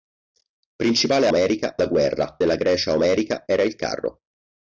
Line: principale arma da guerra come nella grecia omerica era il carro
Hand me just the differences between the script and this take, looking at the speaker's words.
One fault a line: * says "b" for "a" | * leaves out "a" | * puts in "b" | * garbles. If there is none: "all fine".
* says "omerica" for "arma"
* leaves out "come"